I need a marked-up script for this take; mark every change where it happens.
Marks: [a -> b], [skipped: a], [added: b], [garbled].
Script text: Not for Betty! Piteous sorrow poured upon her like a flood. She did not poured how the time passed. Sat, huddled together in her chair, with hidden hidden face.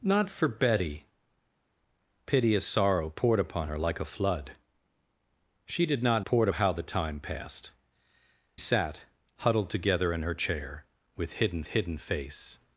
Not for Betty! Piteous sorrow poured upon her like a flood. She did not poured how the time passed. Sat, huddled together in her chair, with hidden hidden face.